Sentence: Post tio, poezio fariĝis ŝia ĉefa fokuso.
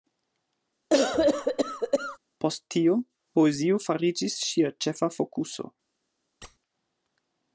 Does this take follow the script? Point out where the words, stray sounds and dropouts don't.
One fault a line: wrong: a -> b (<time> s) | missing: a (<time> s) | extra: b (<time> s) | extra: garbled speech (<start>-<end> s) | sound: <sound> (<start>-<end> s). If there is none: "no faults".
sound: cough (0.9-2.2 s)
sound: squeak (6.4-6.6 s)